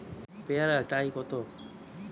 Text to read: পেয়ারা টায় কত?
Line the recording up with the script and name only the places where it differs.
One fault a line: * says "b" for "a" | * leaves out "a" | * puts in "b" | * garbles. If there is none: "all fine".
all fine